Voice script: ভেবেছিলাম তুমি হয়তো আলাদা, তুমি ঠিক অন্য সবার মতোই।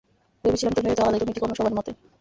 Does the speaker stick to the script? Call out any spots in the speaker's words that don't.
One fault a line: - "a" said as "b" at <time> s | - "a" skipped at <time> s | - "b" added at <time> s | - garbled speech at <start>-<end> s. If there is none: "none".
none